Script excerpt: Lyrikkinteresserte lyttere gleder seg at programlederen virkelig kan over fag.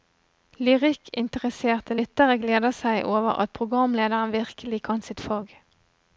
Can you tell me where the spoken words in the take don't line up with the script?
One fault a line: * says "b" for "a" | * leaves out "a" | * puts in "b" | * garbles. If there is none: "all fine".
* puts in "over"
* says "sitt" for "over"